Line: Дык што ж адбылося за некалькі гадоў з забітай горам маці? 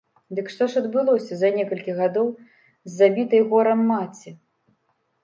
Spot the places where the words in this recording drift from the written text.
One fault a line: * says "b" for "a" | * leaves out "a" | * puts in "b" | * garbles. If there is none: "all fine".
all fine